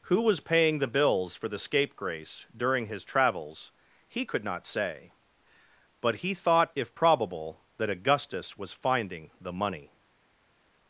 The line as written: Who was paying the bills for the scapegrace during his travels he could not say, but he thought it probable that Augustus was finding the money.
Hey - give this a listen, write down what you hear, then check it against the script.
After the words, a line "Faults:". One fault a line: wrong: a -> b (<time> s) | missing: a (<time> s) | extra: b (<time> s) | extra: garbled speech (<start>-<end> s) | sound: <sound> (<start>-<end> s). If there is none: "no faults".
Who was paying the bills for the scapegrace during his travels he could not say, but he thought if probable that Augustus was finding the money.
Faults:
wrong: it -> if (6.8 s)